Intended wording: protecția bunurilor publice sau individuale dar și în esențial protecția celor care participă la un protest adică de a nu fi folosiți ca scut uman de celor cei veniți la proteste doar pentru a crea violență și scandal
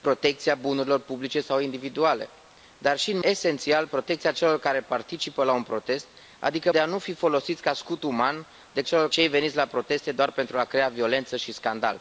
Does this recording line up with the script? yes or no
yes